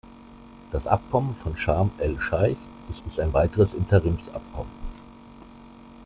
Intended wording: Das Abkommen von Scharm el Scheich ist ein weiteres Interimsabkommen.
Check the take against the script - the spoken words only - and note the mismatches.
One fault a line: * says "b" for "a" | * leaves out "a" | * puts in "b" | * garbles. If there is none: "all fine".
* puts in "ist"